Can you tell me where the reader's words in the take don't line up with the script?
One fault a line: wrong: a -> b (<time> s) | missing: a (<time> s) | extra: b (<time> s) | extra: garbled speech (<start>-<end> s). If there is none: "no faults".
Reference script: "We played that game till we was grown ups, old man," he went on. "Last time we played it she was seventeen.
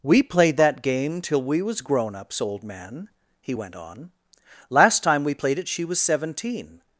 no faults